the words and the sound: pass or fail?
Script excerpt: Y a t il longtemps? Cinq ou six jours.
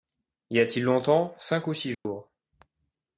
fail